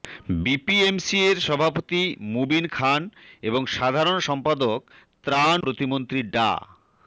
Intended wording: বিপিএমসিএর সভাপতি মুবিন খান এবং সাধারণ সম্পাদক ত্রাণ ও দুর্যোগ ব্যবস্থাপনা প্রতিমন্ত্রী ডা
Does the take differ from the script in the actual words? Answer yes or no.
yes